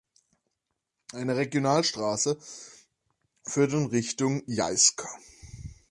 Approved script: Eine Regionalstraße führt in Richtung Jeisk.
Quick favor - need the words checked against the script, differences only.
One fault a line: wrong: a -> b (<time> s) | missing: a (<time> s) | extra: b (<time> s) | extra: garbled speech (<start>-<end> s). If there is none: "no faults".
no faults